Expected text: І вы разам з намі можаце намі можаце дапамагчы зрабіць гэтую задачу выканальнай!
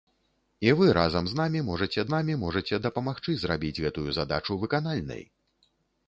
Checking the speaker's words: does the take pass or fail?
pass